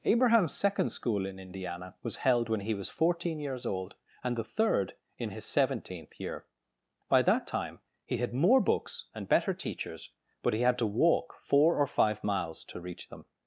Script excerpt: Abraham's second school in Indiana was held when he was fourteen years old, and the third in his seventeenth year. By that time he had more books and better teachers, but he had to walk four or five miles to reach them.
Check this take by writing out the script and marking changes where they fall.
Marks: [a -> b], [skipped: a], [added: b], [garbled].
Abraham's second school in Indiana was held when he was fourteen years old, and the third in his seventeenth year. By that time he had more books and better teachers, but he had to walk four or five miles to reach them.